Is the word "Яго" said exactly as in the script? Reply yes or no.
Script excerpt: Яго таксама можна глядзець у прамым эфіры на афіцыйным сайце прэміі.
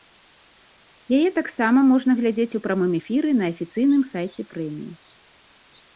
no